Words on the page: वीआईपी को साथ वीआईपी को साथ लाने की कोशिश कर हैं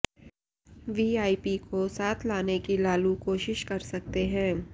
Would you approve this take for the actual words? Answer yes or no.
no